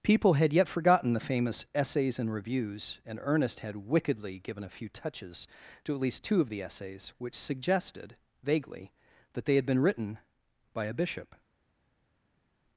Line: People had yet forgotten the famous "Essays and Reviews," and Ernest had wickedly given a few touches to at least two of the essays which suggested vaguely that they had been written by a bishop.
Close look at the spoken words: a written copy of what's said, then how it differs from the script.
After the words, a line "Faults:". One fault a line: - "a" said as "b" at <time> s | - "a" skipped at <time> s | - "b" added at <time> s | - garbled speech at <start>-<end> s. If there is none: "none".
People had yet forgotten the famous "Essays and Reviews," and Ernest had wickedly given a few touches to at least two of the essays which suggested vaguely that they had been written by a bishop.
Faults:
none